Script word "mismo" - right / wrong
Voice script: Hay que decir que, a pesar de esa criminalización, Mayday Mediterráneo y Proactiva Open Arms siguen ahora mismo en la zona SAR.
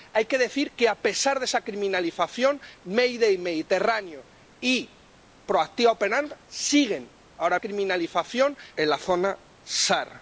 wrong